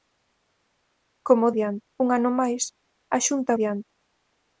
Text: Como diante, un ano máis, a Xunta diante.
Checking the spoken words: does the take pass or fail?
pass